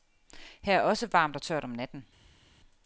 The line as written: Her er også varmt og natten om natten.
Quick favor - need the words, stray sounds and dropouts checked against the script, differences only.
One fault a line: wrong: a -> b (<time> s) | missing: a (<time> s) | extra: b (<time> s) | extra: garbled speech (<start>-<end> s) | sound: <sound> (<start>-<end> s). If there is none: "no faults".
wrong: natten -> tørt (1.4 s)